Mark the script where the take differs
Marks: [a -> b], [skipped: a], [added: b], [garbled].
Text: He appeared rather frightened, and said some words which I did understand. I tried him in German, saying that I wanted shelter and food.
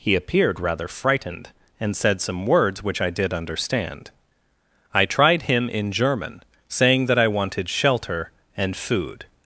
He appeared rather frightened, and said some words which I did understand. I tried him in German, saying that I wanted shelter and food.